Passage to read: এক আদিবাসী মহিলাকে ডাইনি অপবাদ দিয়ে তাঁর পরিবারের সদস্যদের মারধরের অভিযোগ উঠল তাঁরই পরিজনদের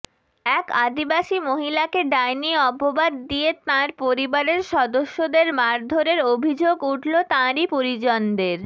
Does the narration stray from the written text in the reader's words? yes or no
no